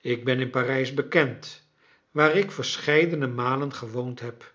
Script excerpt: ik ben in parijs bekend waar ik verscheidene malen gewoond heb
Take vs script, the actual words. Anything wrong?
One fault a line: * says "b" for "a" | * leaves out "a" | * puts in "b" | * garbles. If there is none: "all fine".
all fine